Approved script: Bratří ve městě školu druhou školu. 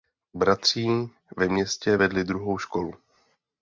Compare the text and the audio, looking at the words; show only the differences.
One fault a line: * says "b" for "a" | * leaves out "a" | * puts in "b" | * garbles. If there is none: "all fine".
* says "vedli" for "školu"